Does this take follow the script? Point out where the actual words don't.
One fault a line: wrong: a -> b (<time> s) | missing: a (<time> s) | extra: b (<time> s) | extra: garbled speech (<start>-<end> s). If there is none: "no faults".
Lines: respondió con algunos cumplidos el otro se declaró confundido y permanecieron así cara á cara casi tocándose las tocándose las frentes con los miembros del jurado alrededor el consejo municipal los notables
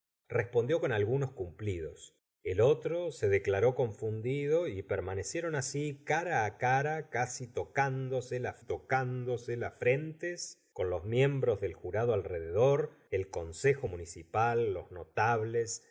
no faults